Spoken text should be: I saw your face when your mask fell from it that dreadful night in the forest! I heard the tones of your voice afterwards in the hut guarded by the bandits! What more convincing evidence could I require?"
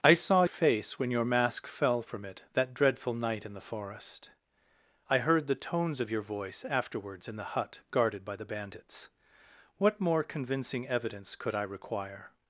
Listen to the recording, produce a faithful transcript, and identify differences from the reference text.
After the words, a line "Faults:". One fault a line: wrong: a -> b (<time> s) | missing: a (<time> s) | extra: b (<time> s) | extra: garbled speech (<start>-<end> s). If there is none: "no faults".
I saw face when your mask fell from it that dreadful night in the forest! I heard the tones of your voice afterwards in the hut guarded by the bandits! What more convincing evidence could I require?"
Faults:
missing: your (0.5 s)